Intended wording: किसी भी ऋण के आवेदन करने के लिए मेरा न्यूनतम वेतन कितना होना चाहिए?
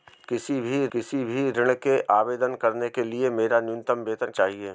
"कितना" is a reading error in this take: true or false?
true